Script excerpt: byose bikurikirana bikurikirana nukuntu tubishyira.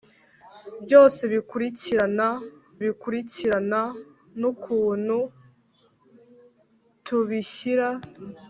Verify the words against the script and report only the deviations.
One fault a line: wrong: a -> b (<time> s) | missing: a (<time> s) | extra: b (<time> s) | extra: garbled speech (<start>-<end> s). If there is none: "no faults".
no faults